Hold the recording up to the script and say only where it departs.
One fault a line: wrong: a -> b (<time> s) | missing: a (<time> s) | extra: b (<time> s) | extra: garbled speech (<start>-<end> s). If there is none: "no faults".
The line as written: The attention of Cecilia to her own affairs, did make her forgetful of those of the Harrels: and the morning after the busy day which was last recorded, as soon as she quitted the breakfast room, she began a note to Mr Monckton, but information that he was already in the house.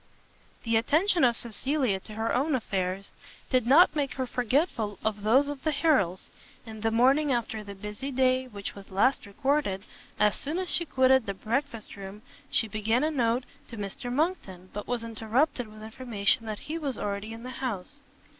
extra: not (3.7 s)
extra: was interrupted with (14.9 s)